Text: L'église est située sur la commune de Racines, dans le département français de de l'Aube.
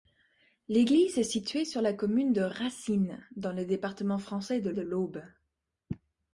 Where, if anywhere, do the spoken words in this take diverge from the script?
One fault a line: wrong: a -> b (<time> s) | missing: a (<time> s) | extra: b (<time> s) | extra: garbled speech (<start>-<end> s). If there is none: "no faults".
no faults